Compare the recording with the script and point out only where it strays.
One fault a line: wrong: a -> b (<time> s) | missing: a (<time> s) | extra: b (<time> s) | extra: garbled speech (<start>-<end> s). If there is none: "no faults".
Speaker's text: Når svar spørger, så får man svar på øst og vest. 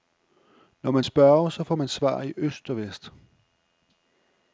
wrong: svar -> man (0.9 s)
wrong: på -> i (2.2 s)